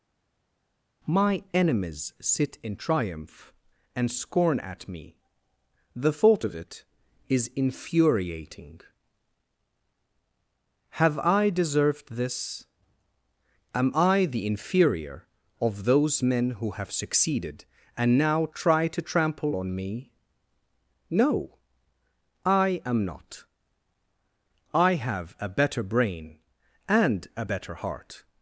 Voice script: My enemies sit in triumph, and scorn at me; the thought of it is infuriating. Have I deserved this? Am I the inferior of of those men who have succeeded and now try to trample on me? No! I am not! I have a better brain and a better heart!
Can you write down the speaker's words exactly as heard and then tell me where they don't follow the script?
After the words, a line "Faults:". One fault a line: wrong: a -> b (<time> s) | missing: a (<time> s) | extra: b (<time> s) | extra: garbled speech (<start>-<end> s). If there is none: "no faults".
My enemies sit in triumph, and scorn at me; the thought of it is infuriating. Have I deserved this? Am I the inferior of those men who have succeeded and now try to trample on me? No! I am not! I have a better brain and a better heart!
Faults:
missing: of (15.8 s)